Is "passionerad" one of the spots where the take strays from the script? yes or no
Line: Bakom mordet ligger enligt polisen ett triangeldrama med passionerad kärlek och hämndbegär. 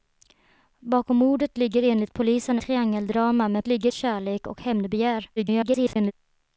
yes